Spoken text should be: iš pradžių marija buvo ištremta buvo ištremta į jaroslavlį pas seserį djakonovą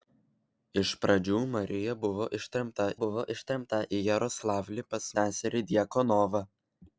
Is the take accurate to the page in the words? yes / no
yes